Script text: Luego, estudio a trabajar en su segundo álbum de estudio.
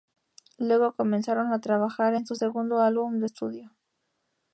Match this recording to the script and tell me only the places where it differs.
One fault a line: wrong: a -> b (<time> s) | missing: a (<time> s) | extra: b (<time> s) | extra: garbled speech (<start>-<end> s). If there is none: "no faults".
wrong: estudio -> comenzaron (0.9 s)